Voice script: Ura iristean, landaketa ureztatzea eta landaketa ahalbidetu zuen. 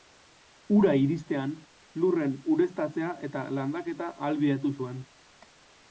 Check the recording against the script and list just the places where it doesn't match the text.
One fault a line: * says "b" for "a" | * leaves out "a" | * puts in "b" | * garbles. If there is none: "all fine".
* says "lurren" for "landaketa"